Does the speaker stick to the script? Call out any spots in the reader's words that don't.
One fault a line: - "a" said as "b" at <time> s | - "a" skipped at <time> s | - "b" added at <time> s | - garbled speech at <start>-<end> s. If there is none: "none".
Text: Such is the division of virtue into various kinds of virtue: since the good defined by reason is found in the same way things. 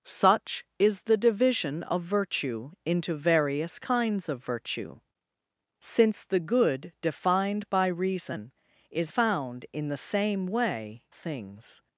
none